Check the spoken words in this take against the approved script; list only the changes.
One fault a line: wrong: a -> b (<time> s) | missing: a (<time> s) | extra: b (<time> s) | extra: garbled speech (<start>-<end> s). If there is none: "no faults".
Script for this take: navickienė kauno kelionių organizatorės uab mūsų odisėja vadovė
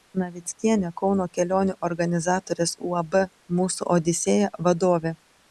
no faults